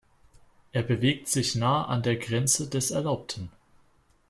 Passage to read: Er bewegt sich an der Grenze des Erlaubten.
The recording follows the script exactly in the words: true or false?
false